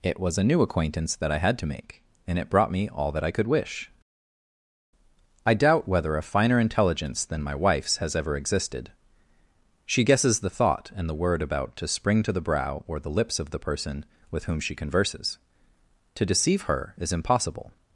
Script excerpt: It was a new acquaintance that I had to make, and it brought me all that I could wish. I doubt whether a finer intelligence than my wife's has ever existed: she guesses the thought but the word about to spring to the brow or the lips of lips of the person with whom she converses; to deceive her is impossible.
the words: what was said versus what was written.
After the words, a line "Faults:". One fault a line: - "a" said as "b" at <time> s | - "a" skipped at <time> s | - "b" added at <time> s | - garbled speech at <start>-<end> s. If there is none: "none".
It was a new acquaintance that I had to make, and it brought me all that I could wish. I doubt whether a finer intelligence than my wife's has ever existed: she guesses the thought and the word about to spring to the brow or the lips of the person with whom she converses; to deceive her is impossible.
Faults:
- "but" said as "and" at 10.9 s
- "lips of" skipped at 13.5 s